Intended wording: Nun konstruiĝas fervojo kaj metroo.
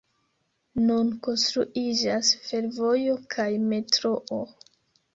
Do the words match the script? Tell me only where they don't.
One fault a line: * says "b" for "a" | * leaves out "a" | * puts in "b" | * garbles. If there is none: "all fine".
all fine